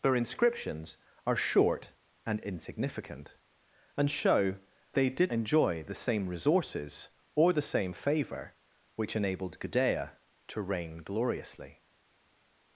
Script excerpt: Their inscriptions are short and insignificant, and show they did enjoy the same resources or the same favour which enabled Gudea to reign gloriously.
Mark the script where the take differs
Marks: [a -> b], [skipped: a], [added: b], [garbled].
Their inscriptions are short and insignificant, and show they did enjoy the same resources or the same favour which enabled Gudea to reign gloriously.